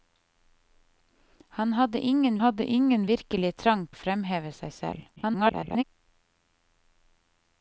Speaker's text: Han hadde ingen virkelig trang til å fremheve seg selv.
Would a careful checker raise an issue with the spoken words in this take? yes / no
yes